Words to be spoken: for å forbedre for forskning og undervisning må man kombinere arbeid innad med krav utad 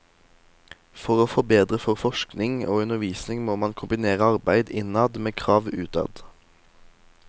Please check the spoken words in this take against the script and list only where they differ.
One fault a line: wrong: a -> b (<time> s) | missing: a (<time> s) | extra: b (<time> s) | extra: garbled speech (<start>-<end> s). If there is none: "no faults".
no faults